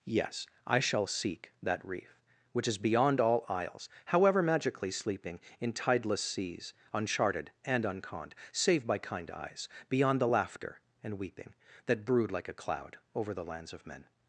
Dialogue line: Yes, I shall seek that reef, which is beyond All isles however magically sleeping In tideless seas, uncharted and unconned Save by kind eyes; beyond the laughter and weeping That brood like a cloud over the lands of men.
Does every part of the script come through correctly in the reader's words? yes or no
yes